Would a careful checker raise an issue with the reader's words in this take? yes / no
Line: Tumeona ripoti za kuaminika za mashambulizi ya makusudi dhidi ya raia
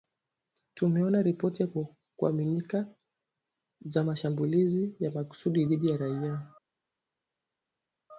no